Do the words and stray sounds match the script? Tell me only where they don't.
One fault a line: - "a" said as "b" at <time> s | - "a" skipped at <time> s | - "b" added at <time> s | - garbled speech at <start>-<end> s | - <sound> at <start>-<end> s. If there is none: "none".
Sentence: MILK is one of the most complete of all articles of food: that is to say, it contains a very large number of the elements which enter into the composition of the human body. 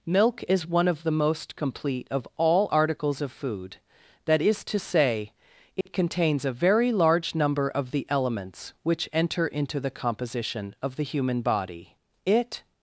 - dropout at 5.8-5.9 s
- "It" added at 12.2 s